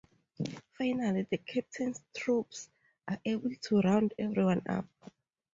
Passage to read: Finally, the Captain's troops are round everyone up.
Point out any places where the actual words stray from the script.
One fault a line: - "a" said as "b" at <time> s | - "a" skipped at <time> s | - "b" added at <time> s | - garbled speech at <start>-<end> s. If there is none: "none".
- "able to" added at 3.2 s